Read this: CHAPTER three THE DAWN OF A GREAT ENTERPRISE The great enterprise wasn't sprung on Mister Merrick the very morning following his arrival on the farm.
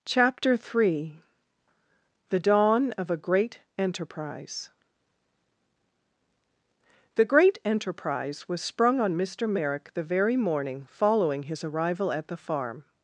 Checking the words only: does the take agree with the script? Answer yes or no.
no